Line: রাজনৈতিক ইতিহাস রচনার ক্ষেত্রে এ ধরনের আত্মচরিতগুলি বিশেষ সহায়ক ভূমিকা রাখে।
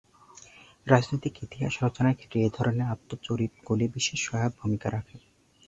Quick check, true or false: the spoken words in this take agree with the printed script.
true